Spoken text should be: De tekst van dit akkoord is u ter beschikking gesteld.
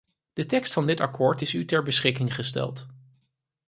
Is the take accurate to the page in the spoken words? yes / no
yes